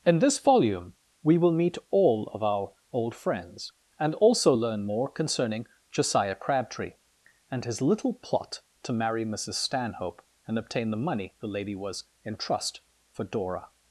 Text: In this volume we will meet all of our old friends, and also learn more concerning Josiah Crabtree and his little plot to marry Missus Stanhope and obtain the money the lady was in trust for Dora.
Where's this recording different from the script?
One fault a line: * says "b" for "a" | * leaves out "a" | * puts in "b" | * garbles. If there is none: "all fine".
all fine